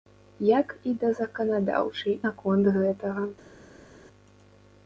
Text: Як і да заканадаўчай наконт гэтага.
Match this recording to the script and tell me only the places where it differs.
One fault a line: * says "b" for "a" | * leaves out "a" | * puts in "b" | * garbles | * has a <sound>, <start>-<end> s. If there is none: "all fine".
all fine